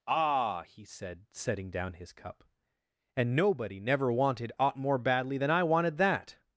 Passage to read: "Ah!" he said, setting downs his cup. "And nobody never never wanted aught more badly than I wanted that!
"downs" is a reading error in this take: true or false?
true